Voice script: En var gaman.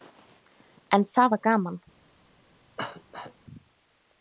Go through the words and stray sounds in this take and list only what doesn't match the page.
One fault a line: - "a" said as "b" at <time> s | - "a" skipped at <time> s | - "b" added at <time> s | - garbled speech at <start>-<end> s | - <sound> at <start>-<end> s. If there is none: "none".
- "það" added at 1.1 s
- cough at 2.8-3.3 s